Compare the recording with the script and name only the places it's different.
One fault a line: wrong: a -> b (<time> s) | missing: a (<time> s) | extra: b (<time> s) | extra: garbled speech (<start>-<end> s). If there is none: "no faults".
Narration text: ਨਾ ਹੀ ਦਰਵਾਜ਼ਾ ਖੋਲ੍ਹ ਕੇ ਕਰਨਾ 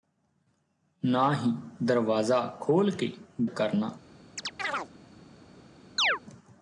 no faults